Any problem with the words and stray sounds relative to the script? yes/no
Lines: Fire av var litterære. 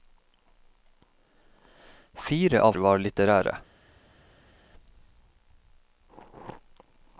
no